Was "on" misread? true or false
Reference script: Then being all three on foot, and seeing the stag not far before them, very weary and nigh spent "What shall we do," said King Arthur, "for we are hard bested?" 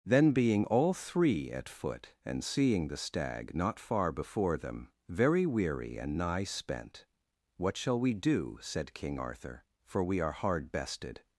true